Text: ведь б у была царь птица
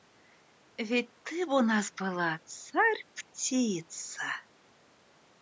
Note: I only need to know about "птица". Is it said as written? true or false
true